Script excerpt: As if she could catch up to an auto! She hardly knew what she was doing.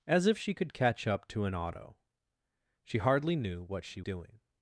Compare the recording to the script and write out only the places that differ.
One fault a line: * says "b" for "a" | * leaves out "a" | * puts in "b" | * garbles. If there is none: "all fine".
* leaves out "was"